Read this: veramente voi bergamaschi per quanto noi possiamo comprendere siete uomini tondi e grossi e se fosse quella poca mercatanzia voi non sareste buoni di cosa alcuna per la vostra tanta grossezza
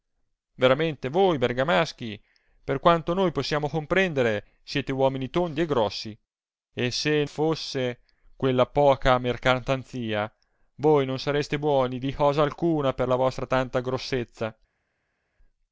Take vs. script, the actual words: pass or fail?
pass